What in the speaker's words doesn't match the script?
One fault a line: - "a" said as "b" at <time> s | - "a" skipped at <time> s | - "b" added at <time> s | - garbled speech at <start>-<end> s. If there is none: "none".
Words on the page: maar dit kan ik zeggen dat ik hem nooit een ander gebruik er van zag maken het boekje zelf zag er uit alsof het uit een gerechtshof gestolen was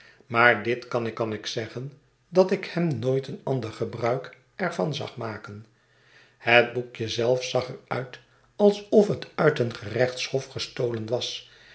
- "kan ik" added at 1.1 s